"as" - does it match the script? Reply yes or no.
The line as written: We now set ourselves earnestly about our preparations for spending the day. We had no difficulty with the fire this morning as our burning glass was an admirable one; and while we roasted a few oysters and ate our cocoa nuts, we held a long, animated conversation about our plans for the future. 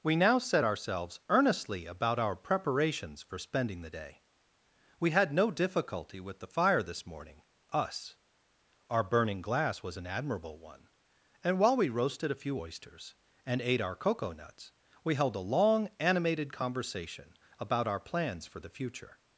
no